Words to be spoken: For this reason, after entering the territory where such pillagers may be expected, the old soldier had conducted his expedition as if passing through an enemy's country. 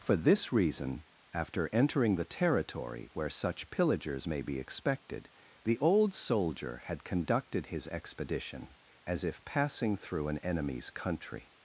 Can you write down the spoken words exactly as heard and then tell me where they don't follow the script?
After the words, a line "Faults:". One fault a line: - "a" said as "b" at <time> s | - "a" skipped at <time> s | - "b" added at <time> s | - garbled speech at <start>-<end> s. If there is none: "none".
For this reason, after entering the territory where such pillagers may be expected, the old soldier had conducted his expedition as if passing through an enemy's country.
Faults:
none